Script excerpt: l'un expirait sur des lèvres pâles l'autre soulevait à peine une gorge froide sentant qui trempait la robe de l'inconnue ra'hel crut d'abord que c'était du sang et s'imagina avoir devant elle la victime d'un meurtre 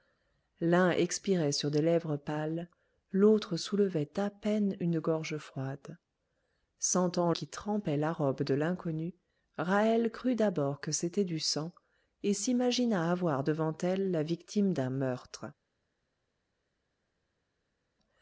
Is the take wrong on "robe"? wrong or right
right